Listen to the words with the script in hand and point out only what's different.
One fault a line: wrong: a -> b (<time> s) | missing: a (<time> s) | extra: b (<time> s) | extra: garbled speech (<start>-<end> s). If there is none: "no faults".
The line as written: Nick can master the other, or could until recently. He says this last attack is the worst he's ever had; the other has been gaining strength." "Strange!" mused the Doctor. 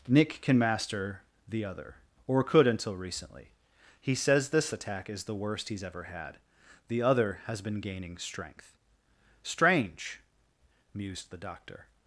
missing: last (4.7 s)